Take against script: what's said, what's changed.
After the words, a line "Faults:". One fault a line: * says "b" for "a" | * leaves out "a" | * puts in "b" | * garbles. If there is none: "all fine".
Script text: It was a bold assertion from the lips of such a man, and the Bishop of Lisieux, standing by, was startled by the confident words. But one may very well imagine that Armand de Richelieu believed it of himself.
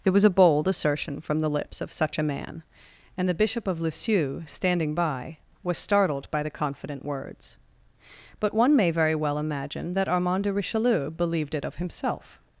It was a bold assertion from the lips of such a man, and the Bishop of Lisieux, standing by, was startled by the confident words. But one may very well imagine that Armand de Richelieu believed it of himself.
Faults:
all fine